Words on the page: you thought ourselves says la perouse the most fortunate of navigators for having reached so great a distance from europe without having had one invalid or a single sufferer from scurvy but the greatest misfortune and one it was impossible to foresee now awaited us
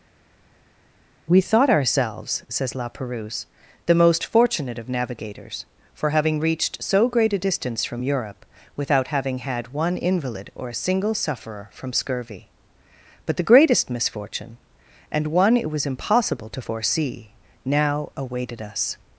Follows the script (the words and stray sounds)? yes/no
no